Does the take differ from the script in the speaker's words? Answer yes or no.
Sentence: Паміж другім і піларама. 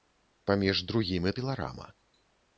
no